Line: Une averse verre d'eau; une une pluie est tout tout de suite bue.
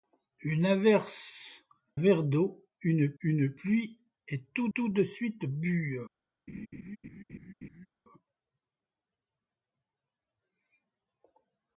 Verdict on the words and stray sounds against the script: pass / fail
fail